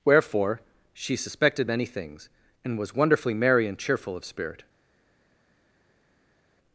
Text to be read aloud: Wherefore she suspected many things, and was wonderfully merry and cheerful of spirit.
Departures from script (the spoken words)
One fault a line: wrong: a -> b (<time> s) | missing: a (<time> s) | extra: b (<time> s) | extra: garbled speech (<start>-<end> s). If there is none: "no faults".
no faults